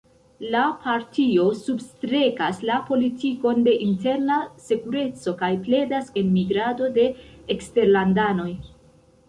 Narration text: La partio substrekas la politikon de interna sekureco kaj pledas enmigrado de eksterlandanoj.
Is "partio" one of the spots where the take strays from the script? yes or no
no